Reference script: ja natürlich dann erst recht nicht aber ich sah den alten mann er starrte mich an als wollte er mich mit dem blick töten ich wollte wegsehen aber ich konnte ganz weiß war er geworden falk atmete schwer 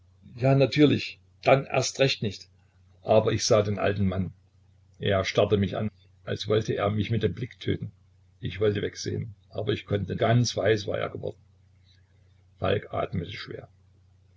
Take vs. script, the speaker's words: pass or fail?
pass